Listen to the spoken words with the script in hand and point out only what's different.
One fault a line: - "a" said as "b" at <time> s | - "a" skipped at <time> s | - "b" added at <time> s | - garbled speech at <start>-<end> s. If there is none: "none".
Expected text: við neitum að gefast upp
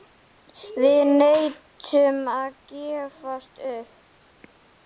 none